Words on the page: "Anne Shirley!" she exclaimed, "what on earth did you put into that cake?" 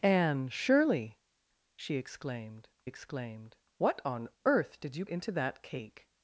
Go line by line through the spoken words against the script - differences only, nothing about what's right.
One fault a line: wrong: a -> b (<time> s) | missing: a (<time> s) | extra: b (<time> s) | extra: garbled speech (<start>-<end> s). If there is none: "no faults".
extra: exclaimed (2.8 s)
missing: put (5.0 s)